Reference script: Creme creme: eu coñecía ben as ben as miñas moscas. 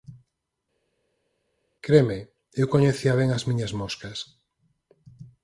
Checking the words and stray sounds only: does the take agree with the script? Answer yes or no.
no